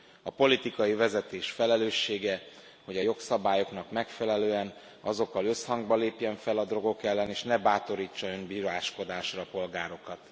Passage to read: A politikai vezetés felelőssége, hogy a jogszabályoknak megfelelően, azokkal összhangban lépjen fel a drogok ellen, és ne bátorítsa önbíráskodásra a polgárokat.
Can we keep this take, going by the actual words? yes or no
yes